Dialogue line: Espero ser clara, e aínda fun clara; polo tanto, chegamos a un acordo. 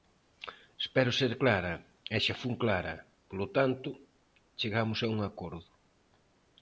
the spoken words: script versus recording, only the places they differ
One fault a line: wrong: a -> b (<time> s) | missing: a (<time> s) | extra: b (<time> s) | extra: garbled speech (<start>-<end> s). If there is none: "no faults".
wrong: aínda -> xa (2.2 s)